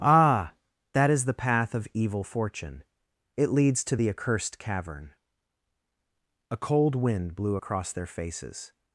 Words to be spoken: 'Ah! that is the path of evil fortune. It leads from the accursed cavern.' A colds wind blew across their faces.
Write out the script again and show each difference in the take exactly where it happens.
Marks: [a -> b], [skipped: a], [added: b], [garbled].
'Ah! that is the path of evil fortune. It leads [from -> to] the accursed cavern.' A [colds -> cold] wind blew across their faces.